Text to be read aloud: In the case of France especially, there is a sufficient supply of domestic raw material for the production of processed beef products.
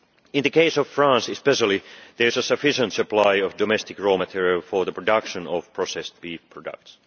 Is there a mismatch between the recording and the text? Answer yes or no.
no